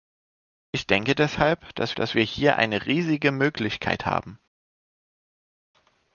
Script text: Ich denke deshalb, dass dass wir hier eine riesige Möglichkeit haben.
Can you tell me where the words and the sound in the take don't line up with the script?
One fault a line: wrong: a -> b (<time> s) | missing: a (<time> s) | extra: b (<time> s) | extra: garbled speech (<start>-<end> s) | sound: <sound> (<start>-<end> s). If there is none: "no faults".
no faults